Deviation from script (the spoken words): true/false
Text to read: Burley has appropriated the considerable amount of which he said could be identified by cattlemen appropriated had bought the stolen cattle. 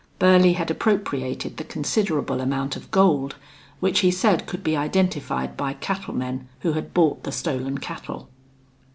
true